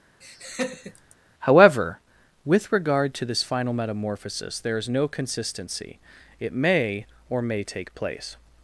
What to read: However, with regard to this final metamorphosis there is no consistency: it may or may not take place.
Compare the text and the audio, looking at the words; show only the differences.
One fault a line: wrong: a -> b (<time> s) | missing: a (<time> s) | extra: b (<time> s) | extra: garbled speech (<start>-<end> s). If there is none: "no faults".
missing: not (7.6 s)